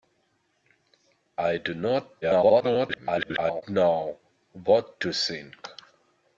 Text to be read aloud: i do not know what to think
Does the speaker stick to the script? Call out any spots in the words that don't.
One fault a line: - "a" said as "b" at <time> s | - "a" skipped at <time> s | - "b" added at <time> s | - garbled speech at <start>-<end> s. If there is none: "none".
- garbled speech at 2.2-3.6 s